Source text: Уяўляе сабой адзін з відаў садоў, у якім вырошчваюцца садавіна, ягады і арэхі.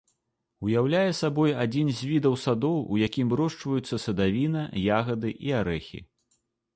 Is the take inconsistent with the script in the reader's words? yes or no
no